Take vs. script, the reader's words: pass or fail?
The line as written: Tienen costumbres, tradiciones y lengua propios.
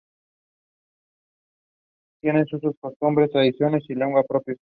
fail